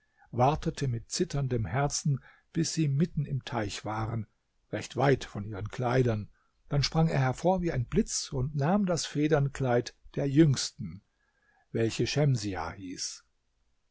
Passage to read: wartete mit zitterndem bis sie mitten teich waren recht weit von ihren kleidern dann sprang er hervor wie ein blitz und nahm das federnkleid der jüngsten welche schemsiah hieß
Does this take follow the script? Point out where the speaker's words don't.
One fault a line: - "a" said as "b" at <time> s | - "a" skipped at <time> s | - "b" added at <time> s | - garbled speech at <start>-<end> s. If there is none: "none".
- "herzen" added at 1.7 s
- "im" added at 3.2 s